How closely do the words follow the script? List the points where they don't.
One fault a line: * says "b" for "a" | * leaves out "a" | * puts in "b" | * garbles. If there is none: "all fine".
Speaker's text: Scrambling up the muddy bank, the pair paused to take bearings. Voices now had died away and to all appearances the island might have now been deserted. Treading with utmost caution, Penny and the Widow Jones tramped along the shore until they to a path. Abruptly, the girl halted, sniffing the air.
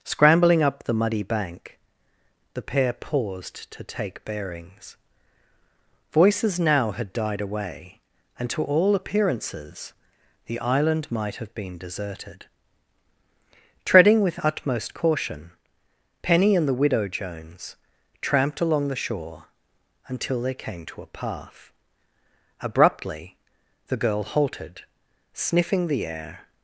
* leaves out "now"
* puts in "came"